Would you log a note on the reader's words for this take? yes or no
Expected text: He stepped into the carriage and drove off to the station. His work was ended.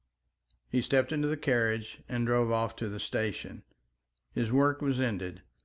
no